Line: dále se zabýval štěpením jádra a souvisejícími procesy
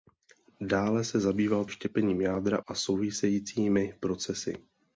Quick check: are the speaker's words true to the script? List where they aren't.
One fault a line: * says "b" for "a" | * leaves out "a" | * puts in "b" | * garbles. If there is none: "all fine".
all fine